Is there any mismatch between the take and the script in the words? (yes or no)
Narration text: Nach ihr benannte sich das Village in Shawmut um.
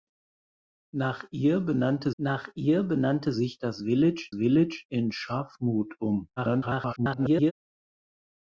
yes